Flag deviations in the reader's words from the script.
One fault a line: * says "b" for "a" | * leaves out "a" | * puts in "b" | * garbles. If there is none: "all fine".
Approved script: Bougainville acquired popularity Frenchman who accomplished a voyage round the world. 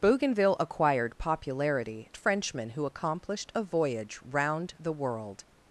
all fine